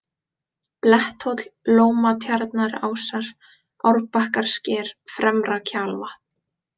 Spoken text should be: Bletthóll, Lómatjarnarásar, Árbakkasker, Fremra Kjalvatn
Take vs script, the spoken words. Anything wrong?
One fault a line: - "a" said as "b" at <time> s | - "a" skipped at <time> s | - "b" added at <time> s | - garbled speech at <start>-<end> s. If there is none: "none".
none